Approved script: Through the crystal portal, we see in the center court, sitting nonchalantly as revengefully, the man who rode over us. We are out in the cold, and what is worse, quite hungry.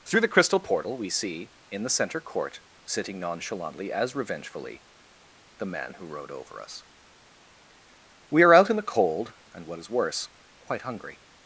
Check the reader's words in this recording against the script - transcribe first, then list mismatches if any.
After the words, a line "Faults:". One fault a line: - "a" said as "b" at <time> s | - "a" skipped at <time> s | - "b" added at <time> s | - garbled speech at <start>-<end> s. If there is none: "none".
Through the crystal portal, we see in the center court, sitting nonchalantly as revengefully, the man who rode over us. We are out in the cold, and what is worse, quite hungry.
Faults:
none